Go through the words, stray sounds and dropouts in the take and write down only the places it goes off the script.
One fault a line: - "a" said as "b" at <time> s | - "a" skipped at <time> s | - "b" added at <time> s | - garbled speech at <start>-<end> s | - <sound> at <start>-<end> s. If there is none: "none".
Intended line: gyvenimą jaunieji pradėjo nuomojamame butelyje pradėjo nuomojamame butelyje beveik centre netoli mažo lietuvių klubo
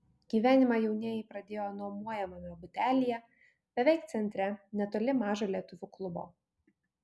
- "pradėjo nuomojamame butelyje" skipped at 3.2 s